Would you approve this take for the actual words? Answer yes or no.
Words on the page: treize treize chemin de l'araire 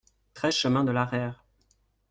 no